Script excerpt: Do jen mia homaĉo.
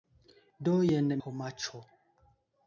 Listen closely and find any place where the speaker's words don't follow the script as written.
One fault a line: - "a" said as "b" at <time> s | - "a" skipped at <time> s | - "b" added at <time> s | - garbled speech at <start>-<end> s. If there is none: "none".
- "mia" skipped at 1.1 s